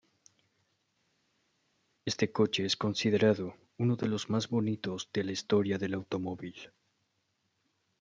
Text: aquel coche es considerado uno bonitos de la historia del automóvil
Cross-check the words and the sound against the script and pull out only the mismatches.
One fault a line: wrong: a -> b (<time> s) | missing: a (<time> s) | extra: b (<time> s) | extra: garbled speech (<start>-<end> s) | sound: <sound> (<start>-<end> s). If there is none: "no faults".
wrong: aquel -> este (2.1 s)
extra: de los más (4.0 s)